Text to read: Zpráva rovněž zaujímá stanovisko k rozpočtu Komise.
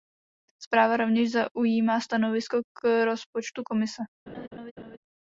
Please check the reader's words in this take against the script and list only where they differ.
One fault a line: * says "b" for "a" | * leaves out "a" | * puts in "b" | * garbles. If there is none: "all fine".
all fine